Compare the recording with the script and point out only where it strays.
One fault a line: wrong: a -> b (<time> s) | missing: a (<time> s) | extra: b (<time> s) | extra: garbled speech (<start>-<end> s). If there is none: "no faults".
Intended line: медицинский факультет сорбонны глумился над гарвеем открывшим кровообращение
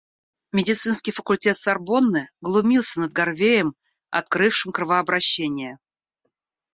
no faults